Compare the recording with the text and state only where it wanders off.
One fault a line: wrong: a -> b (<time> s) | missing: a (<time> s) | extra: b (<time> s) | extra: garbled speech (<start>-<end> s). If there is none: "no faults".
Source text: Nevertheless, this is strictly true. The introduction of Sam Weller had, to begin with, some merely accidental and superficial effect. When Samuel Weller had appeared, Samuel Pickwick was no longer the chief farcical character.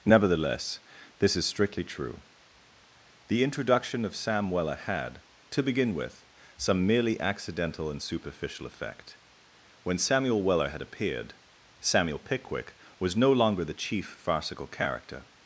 no faults